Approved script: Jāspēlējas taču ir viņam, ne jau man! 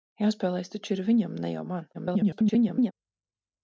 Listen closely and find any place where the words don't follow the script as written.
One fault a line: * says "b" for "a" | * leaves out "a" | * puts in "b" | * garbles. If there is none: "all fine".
* garbles